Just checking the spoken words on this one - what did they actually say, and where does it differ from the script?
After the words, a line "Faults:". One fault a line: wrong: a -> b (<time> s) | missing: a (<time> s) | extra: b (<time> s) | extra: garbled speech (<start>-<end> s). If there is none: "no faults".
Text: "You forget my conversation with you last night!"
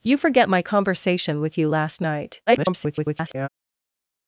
"You forget my conversation with you last night!" [garbled]
Faults:
extra: garbled speech (2.5-3.5 s)